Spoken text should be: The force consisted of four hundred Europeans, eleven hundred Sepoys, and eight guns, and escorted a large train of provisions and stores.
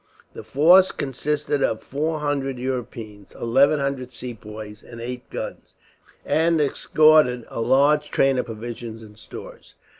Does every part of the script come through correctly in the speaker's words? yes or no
yes